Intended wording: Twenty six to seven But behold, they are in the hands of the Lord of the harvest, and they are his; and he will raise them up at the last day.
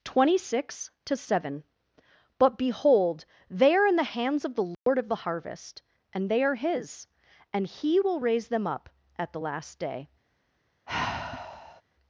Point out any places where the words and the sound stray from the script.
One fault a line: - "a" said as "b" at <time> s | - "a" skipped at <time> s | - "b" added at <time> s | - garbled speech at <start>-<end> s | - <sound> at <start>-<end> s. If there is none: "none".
- dropout at 4.7-4.9 s
- sigh at 10.9-11.8 s